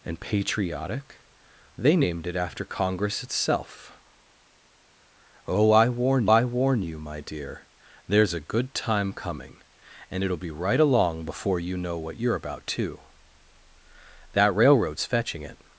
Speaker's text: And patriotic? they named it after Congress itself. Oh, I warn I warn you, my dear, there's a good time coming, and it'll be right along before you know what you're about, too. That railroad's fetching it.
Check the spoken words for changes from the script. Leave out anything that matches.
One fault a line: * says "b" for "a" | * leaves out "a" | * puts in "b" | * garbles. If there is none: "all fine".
all fine